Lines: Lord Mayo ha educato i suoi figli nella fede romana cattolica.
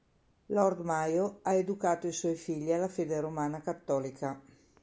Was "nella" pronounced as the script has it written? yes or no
no